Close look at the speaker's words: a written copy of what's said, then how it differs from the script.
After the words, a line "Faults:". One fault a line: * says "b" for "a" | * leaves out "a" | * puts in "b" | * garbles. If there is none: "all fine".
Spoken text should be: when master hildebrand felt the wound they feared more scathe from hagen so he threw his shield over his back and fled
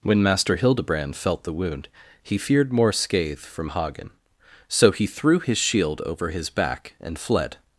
when master hildebrand felt the wound he feared more scathe from hagen so he threw his shield over his back and fled
Faults:
* says "he" for "they"